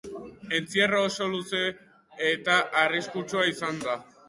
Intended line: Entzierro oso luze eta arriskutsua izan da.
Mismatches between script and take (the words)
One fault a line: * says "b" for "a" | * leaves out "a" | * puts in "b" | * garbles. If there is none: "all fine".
all fine